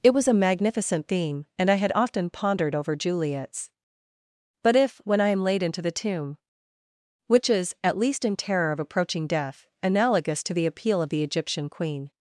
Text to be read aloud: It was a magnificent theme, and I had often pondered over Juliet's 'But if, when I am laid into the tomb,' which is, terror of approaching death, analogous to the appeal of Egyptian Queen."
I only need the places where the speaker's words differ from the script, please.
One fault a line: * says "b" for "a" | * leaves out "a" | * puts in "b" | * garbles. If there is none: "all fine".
* puts in "at least in"
* puts in "the"